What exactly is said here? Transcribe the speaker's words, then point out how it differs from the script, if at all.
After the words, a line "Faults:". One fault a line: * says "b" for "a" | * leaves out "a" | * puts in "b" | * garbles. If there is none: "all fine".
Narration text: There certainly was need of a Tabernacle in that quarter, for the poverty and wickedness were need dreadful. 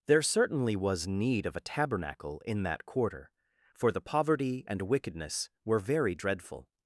There certainly was need of a Tabernacle in that quarter, for the poverty and wickedness were very dreadful.
Faults:
* says "very" for "need"